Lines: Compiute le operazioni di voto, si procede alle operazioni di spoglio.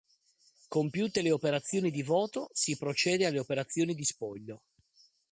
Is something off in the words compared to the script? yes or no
no